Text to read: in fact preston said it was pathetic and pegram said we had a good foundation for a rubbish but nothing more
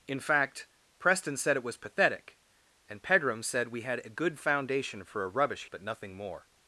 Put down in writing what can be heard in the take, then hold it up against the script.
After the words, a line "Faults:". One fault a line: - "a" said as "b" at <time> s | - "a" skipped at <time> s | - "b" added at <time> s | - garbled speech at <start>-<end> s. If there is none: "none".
in fact preston said it was pathetic and pegram said we had a good foundation for a rubbish but nothing more
Faults:
none